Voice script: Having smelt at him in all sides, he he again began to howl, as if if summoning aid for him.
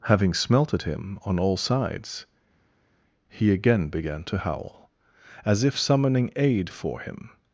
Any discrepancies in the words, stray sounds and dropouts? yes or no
yes